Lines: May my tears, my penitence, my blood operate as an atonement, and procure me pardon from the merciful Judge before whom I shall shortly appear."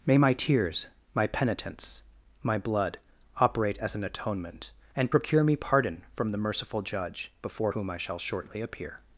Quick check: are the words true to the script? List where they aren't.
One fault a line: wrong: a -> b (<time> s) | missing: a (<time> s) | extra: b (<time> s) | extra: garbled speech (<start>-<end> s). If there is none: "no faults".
no faults